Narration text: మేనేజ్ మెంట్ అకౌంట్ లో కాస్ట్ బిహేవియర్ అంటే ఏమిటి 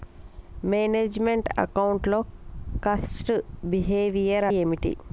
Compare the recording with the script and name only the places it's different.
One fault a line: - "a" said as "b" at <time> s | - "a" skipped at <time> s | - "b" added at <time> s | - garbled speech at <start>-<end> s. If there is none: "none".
- "అంటే" skipped at 4.5 s